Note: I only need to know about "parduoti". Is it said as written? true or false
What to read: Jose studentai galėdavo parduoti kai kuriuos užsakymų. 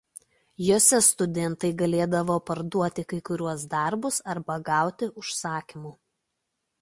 true